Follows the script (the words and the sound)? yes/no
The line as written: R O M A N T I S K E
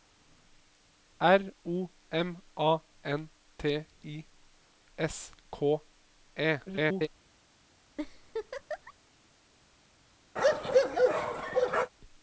no